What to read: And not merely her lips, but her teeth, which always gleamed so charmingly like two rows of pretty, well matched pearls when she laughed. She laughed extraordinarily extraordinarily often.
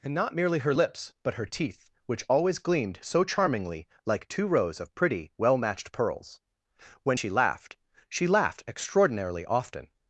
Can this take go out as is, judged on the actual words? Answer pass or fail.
fail